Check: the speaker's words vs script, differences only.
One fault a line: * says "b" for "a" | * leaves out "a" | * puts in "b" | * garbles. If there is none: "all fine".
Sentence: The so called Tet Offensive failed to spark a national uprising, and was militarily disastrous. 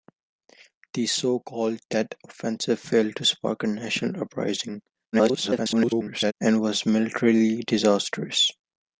* garbles